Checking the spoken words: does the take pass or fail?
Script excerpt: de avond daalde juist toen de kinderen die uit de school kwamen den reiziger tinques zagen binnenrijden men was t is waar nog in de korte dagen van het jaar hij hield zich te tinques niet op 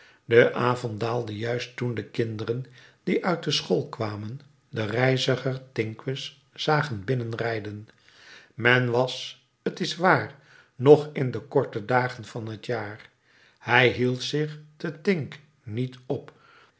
pass